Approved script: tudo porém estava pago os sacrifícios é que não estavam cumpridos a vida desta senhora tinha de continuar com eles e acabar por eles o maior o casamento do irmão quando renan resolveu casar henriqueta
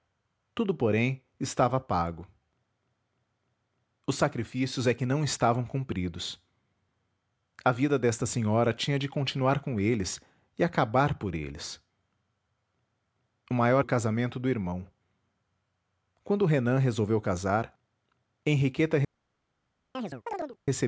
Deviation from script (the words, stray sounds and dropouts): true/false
true